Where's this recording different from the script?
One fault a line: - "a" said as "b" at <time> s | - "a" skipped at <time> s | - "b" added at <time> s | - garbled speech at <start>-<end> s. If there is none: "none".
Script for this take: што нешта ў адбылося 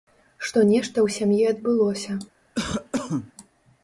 - "сям'і" added at 1.2 s